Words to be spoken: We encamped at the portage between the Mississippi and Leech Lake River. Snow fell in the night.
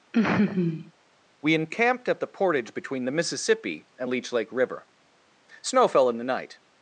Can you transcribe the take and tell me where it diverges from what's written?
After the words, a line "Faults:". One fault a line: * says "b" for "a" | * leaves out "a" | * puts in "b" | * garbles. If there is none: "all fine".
We encamped at the portage between the Mississippi and Leech Lake River. Snow fell in the night.
Faults:
all fine